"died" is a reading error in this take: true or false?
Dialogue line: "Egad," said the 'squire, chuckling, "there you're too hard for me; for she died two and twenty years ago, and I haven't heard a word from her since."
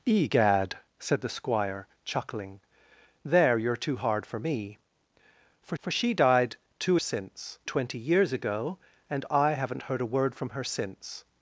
false